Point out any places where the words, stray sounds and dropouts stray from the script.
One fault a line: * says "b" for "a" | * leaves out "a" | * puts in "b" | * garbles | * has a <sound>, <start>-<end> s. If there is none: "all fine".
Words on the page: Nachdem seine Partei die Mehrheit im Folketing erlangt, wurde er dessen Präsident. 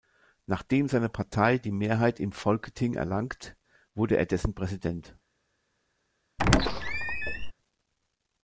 * has a squeak, 6.4-7.5 s